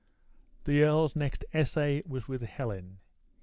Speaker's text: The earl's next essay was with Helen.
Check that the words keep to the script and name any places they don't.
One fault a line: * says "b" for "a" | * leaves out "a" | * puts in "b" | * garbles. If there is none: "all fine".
all fine